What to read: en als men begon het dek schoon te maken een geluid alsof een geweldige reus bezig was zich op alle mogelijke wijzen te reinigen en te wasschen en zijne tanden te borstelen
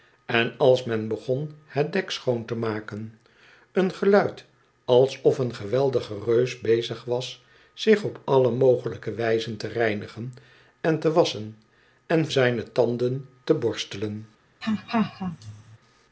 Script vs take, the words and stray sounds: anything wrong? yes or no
yes